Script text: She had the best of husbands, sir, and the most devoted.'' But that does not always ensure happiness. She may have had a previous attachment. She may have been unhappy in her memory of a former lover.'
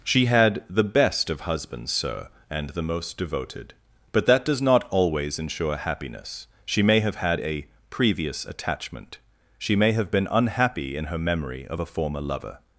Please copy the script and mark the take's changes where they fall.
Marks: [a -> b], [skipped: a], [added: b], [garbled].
She had the best of husbands, sir, and the most devoted.'' But that does not always ensure happiness. She may have had a previous attachment. She may have been unhappy in her memory of a former lover.'